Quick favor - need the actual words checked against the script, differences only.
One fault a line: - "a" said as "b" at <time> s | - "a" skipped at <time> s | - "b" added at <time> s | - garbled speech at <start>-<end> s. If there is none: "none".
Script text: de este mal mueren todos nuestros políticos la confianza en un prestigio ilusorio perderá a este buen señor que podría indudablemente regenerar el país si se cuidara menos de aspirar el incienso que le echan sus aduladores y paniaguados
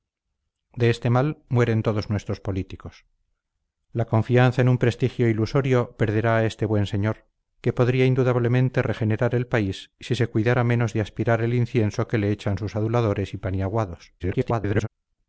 - garbled speech at 14.2-14.9 s